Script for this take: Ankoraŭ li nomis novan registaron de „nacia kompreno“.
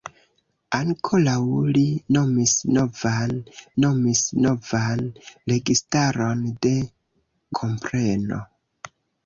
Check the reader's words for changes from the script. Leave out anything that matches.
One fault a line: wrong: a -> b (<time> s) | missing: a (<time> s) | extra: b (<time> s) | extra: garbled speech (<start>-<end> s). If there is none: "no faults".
extra: nomis novan (3.8 s)
missing: nacia (6.7 s)